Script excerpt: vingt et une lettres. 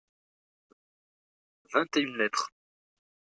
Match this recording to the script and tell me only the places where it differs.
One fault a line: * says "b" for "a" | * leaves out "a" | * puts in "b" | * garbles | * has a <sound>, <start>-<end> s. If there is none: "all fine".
all fine